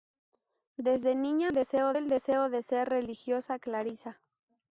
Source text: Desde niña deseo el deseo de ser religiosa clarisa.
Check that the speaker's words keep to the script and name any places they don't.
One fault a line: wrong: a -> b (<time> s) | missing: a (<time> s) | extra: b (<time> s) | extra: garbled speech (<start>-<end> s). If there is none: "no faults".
no faults